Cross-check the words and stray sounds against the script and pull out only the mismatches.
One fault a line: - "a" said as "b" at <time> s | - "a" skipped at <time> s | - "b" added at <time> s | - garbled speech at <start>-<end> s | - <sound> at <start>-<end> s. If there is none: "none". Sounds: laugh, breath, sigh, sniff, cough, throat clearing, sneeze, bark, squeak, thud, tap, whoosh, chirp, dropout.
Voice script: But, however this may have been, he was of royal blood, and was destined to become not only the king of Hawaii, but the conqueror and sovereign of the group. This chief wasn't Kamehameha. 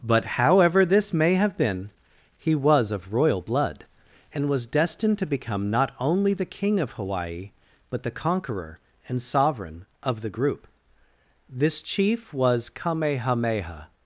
- "wasn't" said as "was" at 12.3 s